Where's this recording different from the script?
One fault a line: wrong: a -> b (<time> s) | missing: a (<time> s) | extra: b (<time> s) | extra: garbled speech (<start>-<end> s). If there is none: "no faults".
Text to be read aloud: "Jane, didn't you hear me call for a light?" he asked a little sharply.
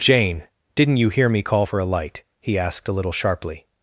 no faults